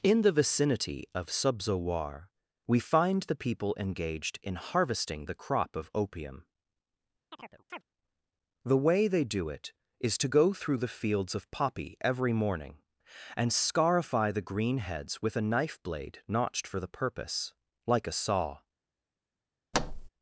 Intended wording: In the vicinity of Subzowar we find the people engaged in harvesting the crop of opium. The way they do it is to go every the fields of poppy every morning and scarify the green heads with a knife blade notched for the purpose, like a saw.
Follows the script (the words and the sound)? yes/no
no